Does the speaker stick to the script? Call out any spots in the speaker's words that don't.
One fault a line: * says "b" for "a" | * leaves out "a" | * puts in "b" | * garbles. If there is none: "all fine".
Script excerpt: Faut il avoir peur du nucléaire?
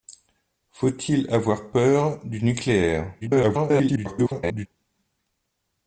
* garbles